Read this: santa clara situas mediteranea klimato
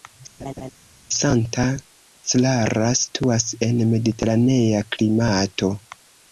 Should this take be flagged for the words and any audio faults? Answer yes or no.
yes